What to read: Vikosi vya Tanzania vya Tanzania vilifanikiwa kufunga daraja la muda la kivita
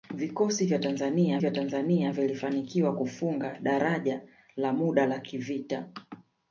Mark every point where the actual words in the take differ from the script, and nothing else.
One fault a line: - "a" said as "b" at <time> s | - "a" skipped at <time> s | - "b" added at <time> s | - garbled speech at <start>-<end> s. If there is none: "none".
none